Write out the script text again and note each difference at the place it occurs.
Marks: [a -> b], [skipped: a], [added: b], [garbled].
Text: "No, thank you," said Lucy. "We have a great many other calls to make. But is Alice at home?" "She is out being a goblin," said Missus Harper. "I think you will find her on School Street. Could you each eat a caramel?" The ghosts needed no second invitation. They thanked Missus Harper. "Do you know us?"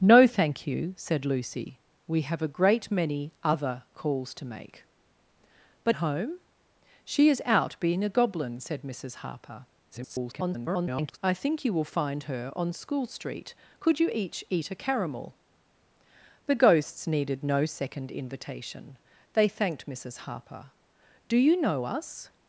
"No, thank you," said Lucy. "We have a great many other calls to make. But [skipped: is Alice at] home?" "She is out being a goblin," said Missus Harper. [garbled] "I think you will find her on School Street. Could you each eat a caramel?" The ghosts needed no second invitation. They thanked Missus Harper. "Do you know us?"